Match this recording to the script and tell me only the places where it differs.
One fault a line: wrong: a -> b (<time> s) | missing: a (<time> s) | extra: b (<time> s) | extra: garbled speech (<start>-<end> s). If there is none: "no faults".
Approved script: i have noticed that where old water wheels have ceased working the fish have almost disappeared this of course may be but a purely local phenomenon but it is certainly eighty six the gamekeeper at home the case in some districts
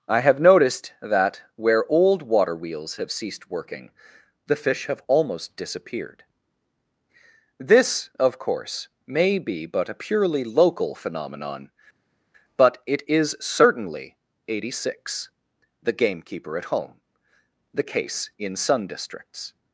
wrong: some -> sun (18.5 s)